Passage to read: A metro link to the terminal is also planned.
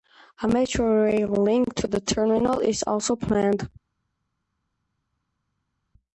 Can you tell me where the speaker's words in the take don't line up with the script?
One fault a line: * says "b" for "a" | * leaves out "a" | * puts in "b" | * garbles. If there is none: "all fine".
* puts in "rail"